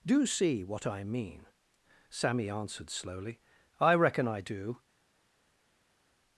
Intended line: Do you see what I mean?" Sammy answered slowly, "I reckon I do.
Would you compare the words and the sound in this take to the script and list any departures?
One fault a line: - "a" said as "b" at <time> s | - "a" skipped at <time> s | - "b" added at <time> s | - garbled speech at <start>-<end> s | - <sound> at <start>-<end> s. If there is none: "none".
- "you" skipped at 0.2 s